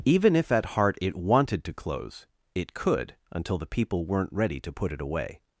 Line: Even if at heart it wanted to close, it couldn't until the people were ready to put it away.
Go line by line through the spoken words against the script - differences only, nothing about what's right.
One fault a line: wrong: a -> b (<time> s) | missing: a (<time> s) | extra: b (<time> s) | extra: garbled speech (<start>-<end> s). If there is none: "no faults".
wrong: couldn't -> could (2.7 s)
wrong: were -> weren't (4.0 s)